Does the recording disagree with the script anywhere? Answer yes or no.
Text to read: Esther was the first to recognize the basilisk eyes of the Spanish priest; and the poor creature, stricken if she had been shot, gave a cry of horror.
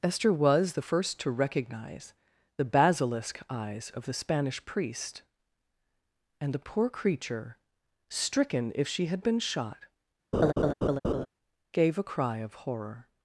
no